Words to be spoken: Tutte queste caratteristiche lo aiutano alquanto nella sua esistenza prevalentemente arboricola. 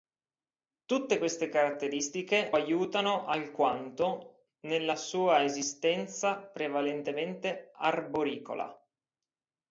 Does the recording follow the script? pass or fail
fail